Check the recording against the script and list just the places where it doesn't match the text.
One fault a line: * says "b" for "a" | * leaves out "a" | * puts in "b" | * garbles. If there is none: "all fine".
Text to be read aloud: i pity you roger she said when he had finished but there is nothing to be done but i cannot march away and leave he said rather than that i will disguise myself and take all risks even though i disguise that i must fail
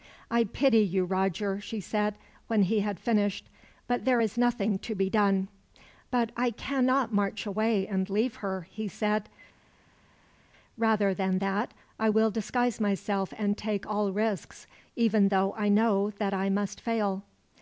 * puts in "her"
* says "know" for "disguise"